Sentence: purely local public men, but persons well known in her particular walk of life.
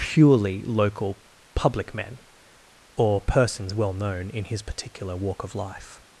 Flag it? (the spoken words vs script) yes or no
yes